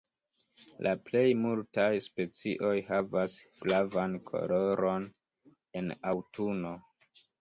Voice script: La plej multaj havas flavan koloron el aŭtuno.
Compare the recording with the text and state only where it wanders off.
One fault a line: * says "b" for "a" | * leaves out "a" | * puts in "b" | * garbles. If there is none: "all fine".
* puts in "specioj"
* says "en" for "el"